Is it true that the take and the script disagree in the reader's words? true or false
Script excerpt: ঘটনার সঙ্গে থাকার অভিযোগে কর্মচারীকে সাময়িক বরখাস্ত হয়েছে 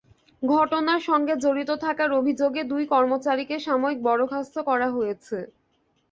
true